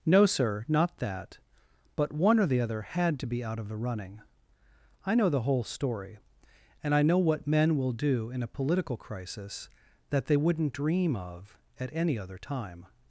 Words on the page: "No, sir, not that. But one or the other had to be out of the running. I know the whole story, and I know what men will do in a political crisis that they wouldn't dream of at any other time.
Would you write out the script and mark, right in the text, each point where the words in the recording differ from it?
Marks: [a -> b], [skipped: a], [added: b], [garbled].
"No, sir, not that. But one or the other had to be out of the running. I know the whole story, and I know what men will do in a political crisis that they wouldn't dream of at any other time.